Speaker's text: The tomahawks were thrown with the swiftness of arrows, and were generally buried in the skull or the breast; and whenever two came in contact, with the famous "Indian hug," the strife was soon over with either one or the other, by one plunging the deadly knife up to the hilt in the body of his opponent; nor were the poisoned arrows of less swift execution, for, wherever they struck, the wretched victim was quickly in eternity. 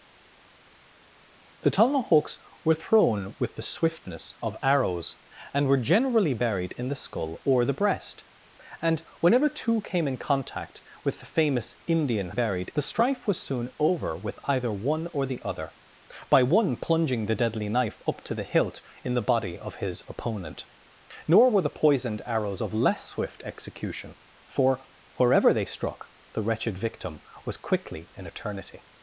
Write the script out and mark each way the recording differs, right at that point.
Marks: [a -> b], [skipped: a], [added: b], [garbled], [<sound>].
The tomahawks were thrown with the swiftness of arrows, and were generally buried in the skull or the breast; and whenever two came in contact, with the famous "Indian [hug," -> buried] the strife was soon over with either one or the other, by one plunging the deadly knife up to the hilt in the body of his opponent; nor were the poisoned arrows of less swift execution, for, wherever they struck, the wretched victim was quickly in eternity.